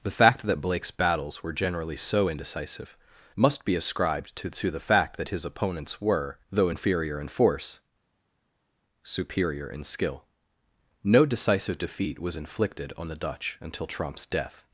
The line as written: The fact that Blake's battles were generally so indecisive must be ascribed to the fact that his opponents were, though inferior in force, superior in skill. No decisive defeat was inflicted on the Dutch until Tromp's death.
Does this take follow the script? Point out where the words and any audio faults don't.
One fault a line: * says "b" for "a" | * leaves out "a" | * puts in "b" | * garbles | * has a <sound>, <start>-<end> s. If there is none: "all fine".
* puts in "to"